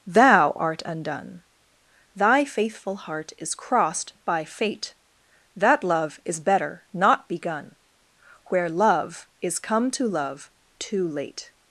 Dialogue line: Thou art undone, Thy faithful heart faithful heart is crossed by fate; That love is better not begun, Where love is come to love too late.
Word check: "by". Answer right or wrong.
right